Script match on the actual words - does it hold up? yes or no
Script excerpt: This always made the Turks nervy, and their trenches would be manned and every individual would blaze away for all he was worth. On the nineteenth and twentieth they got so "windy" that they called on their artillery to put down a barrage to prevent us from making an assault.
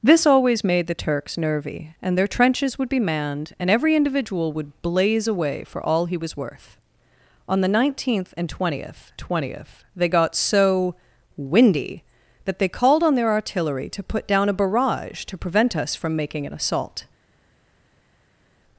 no